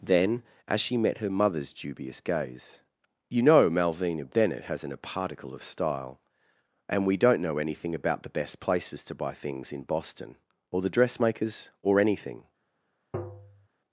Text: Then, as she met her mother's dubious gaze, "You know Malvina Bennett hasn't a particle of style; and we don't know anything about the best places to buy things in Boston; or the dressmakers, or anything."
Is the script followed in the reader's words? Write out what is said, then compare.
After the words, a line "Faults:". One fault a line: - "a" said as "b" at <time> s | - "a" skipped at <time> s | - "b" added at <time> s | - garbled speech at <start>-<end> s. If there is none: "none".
Then, as she met her mother's dubious gaze, "You know Malvina Bennett hasn't a particle of style; and we don't know anything about the best places to buy things in Boston; or the dressmakers, or anything."
Faults:
none